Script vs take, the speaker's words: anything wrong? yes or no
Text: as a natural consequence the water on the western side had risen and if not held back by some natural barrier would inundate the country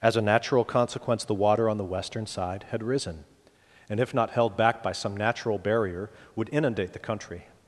no